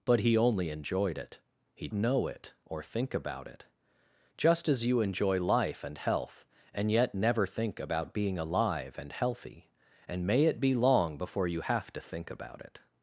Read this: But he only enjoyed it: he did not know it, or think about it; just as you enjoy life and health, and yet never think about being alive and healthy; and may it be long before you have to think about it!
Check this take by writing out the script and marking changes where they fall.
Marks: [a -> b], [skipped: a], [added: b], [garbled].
But he only enjoyed it: he [skipped: did not] know it, or think about it; just as you enjoy life and health, and yet never think about being alive and healthy; and may it be long before you have to think about it!